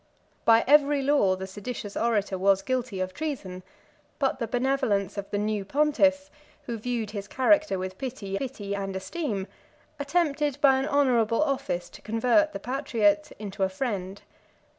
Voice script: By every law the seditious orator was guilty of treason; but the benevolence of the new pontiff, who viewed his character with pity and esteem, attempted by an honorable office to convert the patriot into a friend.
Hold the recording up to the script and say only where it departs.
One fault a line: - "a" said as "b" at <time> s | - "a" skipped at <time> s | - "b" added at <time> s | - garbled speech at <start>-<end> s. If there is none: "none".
- "pity" added at 8.4 s